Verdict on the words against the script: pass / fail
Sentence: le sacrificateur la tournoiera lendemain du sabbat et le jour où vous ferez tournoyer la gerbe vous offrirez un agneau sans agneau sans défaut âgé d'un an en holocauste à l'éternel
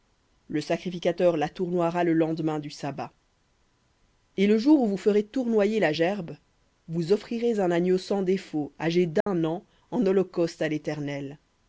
fail